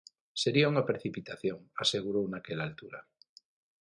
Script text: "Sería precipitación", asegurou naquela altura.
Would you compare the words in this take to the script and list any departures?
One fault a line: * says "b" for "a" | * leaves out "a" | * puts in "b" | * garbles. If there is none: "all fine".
* puts in "unha"